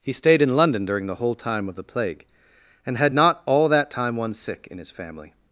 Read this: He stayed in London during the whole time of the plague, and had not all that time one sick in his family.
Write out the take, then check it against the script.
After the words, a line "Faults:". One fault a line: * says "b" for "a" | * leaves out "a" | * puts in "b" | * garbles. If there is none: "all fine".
He stayed in London during the whole time of the plague, and had not all that time one sick in his family.
Faults:
all fine